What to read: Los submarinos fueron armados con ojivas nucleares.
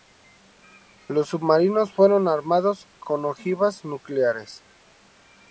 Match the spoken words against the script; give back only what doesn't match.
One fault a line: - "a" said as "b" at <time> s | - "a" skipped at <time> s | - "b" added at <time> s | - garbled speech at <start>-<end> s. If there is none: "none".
none